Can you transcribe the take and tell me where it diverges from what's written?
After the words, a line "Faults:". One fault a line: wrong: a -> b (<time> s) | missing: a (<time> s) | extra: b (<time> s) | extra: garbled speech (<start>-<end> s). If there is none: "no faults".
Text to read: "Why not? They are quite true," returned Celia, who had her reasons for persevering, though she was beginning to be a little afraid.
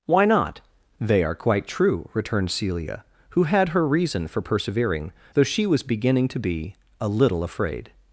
"Why not? They are quite true," returned Celia, who had her reason for persevering, though she was beginning to be a little afraid.
Faults:
wrong: reasons -> reason (3.9 s)